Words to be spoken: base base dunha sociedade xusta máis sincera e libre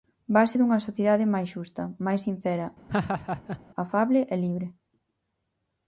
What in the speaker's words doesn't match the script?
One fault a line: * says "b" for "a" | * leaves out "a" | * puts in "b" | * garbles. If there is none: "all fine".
* leaves out "base"
* puts in "máis"
* puts in "afable"